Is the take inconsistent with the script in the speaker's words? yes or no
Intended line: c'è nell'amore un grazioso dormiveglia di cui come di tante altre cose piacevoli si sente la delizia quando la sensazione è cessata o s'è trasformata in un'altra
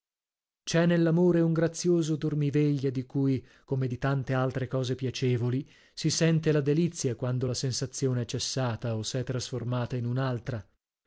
no